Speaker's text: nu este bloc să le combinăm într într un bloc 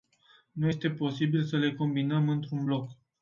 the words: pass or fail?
fail